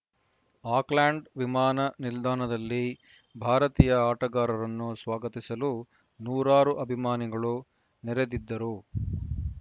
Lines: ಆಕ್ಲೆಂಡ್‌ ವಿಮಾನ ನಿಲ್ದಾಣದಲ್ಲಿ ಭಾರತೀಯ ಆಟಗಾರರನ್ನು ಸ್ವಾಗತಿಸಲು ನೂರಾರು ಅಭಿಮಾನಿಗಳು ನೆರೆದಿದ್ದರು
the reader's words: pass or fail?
pass